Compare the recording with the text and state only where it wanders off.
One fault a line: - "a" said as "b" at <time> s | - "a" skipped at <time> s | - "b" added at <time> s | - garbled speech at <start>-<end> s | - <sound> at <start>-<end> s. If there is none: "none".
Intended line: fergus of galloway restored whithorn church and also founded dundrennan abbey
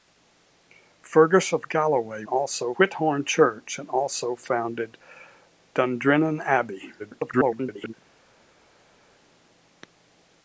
- "restored" said as "also" at 2.3 s
- garbled speech at 7.0-7.9 s